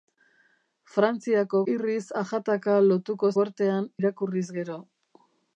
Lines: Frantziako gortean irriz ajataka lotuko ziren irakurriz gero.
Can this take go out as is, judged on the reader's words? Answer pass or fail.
fail